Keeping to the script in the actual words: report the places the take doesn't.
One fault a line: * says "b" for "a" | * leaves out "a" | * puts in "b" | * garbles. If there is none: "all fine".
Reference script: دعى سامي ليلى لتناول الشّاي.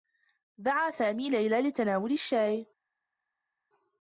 all fine